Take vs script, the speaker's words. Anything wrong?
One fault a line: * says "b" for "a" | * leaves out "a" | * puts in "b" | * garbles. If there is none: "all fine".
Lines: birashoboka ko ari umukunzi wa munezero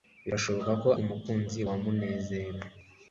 * leaves out "ari"